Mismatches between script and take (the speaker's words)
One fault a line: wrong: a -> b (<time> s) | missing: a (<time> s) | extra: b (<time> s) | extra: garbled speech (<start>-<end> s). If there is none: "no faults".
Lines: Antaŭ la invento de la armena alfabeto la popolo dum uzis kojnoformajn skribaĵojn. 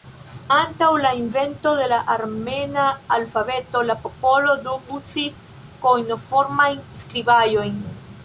no faults